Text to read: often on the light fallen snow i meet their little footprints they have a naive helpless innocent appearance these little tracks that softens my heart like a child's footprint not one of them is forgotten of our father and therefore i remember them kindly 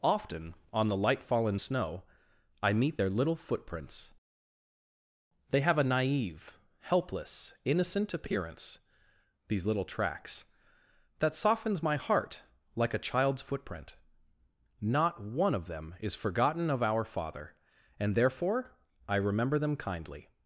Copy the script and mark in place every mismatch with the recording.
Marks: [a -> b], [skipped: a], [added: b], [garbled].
often on the light fallen snow i meet their little footprints they have a naive helpless innocent appearance these little tracks that softens my heart like a child's footprint not one of them is forgotten of our father and therefore i remember them kindly